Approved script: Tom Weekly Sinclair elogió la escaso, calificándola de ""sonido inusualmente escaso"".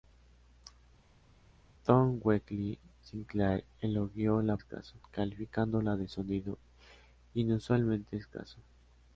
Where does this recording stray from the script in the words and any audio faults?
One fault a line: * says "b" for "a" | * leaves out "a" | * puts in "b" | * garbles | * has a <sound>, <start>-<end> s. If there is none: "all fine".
all fine